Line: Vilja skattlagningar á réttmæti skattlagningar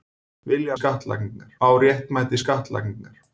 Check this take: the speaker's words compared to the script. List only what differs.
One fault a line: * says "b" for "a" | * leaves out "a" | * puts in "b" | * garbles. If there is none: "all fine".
all fine